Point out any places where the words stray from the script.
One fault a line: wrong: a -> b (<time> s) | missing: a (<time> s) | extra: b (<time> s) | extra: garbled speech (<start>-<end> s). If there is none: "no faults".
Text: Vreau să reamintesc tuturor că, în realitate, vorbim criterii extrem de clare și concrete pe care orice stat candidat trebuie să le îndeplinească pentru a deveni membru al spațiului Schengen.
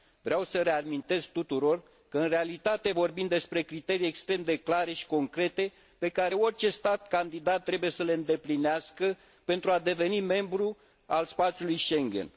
extra: despre (3.3 s)